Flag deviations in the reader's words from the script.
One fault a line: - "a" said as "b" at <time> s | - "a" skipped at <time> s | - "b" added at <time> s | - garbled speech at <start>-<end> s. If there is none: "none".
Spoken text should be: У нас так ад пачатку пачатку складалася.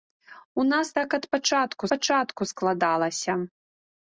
none